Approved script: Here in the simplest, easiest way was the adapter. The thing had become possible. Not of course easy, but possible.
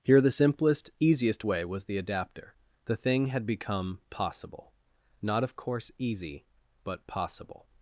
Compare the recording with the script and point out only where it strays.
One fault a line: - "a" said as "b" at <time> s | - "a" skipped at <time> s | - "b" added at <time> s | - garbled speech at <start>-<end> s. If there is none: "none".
- "in" skipped at 0.2 s